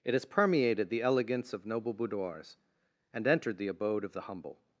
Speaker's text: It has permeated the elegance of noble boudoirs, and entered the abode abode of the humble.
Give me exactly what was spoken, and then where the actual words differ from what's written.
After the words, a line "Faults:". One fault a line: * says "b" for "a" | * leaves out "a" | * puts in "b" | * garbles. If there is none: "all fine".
It has permeated the elegance of noble boudoirs, and entered the abode of the humble.
Faults:
* leaves out "abode"